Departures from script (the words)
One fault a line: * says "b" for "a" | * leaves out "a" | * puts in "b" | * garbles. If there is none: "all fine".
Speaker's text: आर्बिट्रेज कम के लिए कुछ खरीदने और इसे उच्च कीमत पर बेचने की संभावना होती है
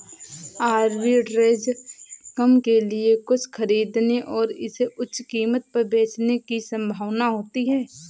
all fine